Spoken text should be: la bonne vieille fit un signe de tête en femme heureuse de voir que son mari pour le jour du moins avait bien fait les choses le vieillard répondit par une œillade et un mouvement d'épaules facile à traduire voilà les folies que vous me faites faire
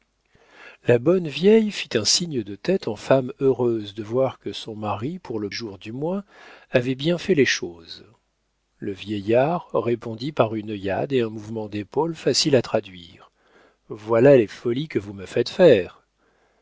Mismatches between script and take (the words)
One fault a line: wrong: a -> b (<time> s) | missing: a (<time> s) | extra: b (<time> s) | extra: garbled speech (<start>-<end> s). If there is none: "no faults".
no faults